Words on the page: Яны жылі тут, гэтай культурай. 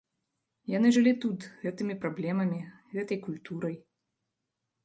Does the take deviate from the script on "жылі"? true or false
false